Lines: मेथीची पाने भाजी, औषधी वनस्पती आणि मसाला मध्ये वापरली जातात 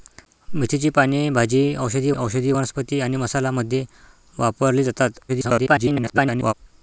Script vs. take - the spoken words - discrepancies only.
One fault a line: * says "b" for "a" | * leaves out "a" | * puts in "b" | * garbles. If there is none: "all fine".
* puts in "औषधी"
* garbles